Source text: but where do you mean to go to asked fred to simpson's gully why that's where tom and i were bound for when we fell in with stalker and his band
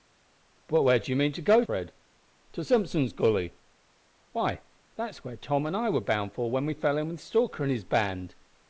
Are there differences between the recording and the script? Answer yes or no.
yes